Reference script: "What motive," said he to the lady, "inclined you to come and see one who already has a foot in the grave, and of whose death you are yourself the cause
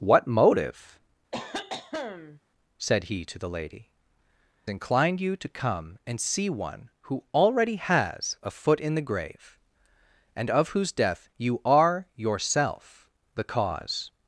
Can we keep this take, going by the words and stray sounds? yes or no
no